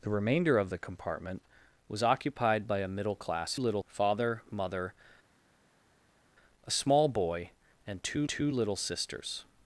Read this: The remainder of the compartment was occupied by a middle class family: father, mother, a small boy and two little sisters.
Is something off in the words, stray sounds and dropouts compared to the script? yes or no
yes